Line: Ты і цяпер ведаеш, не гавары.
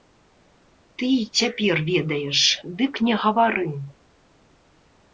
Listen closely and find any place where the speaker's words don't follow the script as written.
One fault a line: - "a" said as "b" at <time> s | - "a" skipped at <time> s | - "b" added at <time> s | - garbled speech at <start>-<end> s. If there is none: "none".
- "дык" added at 2.8 s